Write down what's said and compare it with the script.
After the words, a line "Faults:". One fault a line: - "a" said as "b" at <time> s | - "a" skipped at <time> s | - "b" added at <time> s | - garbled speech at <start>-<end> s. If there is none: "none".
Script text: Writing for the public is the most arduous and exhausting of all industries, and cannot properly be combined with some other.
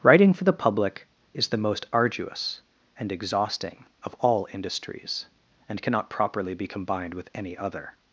Writing for the public is the most arduous and exhausting of all industries, and cannot properly be combined with any other.
Faults:
- "some" said as "any" at 7.3 s